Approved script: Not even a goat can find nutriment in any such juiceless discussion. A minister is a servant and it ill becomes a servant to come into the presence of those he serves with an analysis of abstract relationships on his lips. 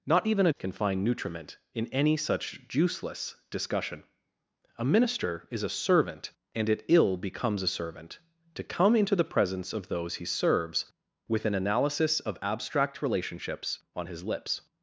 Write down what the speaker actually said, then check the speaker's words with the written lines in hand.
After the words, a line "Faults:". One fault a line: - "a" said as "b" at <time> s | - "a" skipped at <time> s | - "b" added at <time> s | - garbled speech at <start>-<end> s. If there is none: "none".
Not even a can find nutriment in any such juiceless discussion. A minister is a servant and it ill becomes a servant to come into the presence of those he serves with an analysis of abstract relationships on his lips.
Faults:
- "goat" skipped at 0.5 s